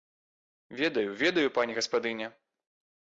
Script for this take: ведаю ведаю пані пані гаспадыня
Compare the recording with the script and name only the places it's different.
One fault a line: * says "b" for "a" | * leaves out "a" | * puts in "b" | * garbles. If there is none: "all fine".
* leaves out "пані"